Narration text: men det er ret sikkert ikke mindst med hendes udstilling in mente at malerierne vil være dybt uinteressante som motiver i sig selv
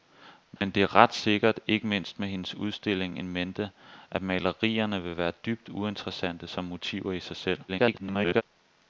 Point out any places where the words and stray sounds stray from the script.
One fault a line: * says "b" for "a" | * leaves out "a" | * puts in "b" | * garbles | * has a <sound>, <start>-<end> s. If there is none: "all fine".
* has a dropout, 0.6-0.6 s
* garbles